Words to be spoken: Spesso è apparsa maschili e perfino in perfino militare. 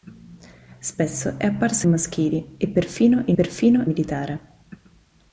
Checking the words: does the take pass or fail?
pass